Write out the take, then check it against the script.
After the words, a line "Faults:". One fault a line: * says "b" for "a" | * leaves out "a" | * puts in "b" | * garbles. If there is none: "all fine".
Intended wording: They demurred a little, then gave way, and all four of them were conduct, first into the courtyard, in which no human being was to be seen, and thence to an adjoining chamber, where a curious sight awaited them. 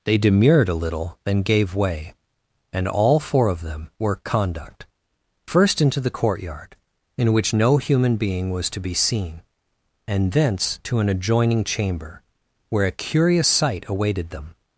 They demurred a little, then gave way, and all four of them were conduct, first into the courtyard, in which no human being was to be seen, and thence to an adjoining chamber, where a curious sight awaited them.
Faults:
all fine